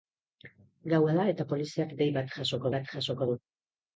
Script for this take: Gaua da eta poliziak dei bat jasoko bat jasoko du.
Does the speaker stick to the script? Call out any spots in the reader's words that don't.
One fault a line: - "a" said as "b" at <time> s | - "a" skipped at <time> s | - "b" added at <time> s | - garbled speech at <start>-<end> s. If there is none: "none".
none